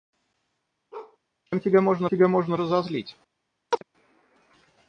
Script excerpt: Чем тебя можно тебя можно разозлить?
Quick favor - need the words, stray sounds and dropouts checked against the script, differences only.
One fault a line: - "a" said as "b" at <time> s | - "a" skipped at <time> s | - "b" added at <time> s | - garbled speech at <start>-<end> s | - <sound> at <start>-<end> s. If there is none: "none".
- bark at 0.9-1.2 s
- chirp at 3.7-3.8 s